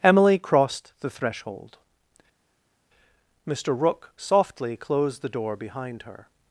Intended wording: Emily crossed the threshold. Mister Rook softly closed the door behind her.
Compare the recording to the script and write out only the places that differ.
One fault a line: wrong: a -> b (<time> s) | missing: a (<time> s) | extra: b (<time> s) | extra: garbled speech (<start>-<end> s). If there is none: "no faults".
no faults